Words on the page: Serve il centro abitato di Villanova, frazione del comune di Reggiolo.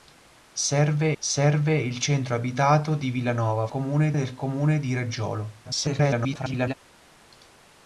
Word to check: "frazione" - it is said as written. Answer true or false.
false